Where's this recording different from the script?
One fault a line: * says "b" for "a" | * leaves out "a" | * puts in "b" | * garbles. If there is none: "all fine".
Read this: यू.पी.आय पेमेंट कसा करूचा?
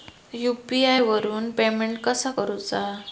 * puts in "वरून"